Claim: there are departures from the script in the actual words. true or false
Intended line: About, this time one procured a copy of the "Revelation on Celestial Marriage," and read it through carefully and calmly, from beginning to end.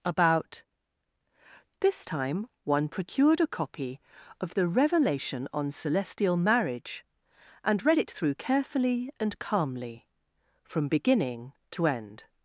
false